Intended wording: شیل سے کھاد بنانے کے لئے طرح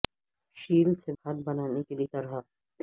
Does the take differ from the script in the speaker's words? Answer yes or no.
no